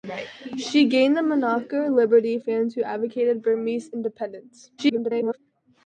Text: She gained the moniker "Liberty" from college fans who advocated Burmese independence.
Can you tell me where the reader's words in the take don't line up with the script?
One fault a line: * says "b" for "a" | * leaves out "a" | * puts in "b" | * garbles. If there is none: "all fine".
* leaves out "from college"
* garbles